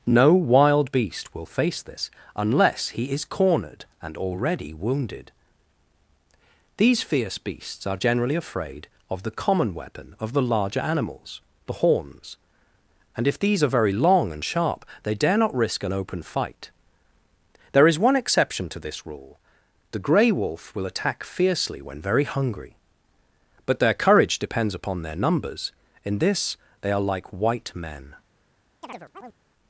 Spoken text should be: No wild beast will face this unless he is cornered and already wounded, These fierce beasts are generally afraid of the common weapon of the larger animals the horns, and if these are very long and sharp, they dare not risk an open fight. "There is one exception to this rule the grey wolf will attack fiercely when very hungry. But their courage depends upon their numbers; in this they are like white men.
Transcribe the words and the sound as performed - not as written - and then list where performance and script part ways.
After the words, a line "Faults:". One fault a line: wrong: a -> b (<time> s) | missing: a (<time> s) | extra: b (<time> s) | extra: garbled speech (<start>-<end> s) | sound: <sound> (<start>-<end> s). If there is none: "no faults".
No wild beast will face this unless he is cornered and already wounded, These fierce beasts are generally afraid of the common weapon of the larger animals the horns, and if these are very long and sharp, they dare not risk an open fight. "There is one exception to this rule the grey wolf will attack fiercely when very hungry. But their courage depends upon their numbers; in this they are like white men.
Faults:
sound: chirp (28.8-29.4 s)